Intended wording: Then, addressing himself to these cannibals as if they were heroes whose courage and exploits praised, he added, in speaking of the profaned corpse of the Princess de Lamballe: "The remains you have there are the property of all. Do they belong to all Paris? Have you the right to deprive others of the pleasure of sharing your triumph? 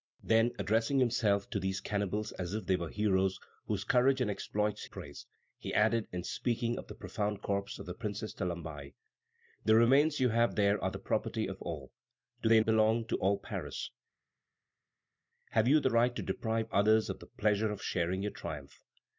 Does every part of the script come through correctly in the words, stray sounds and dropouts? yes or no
yes